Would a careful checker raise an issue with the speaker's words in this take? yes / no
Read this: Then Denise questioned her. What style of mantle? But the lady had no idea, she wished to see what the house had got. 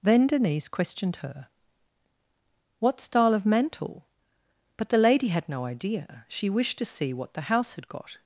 no